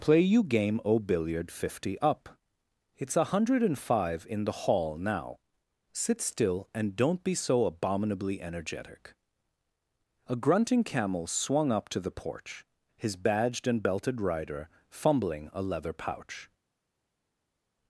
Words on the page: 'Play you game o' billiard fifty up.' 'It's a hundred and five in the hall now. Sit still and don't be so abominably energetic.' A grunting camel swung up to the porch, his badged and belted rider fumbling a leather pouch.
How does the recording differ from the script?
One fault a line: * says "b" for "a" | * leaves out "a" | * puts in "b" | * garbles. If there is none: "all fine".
all fine